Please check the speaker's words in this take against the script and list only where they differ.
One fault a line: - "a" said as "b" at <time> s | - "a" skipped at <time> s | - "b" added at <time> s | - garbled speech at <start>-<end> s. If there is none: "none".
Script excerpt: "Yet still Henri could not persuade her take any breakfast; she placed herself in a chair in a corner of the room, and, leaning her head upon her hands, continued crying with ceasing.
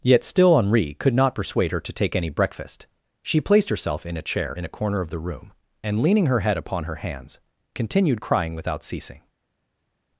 - "to" added at 1.8 s
- "with" said as "without" at 8.5 s